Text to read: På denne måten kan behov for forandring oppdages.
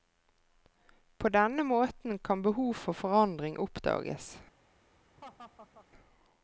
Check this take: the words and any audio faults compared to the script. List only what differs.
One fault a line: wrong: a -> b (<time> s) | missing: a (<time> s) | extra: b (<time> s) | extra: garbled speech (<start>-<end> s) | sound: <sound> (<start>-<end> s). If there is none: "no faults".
sound: laugh (5.2-5.9 s)